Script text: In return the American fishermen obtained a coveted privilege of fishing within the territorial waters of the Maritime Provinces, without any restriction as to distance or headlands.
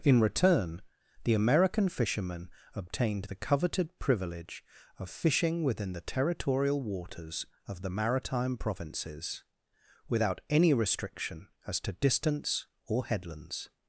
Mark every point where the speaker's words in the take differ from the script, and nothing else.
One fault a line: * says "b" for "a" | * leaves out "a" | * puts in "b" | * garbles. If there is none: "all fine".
* says "the" for "a"